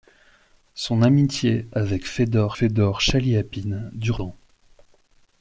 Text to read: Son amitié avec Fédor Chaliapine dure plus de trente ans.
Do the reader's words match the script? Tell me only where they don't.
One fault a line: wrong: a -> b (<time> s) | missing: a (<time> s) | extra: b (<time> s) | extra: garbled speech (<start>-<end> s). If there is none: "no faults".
extra: Fédor (2.5 s)
missing: plus de trente (4.2 s)